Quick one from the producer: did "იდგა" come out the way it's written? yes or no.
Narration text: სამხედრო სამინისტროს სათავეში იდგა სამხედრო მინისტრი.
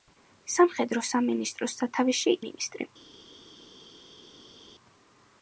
no